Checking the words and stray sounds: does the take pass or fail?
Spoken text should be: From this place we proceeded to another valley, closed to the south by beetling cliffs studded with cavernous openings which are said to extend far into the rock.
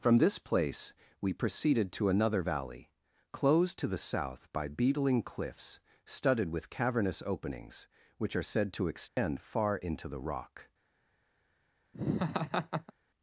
fail